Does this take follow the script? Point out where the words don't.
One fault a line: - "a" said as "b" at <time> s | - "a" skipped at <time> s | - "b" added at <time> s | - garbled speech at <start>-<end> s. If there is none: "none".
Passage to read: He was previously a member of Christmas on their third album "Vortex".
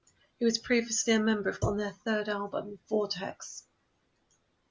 - "Christmas" skipped at 1.6 s